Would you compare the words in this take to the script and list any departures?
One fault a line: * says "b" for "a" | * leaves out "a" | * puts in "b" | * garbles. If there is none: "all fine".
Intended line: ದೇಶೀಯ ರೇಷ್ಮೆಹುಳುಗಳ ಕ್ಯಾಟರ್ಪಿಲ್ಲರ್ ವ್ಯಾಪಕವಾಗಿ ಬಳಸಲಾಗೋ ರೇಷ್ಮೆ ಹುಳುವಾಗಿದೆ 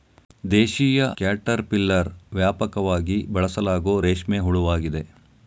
* leaves out "ರೇಷ್ಮೆಹುಳುಗಳ"